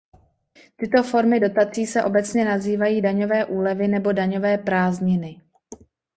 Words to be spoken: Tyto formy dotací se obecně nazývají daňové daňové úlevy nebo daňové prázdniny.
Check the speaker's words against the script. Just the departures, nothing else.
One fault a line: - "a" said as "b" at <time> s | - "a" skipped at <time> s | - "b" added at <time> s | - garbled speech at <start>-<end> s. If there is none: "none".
- "daňové" skipped at 3.5 s